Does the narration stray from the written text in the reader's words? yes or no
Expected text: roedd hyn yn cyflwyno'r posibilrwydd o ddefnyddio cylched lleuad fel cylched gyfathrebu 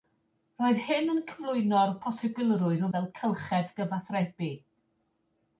yes